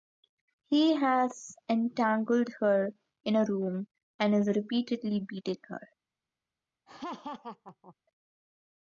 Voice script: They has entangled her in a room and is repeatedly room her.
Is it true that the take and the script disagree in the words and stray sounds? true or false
true